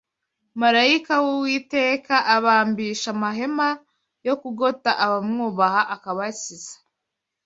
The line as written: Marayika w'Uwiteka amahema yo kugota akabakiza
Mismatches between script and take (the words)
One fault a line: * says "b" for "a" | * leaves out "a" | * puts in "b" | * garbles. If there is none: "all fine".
* puts in "abambisha"
* puts in "abamwubaha"